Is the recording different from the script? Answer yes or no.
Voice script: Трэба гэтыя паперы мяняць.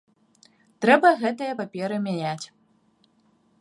no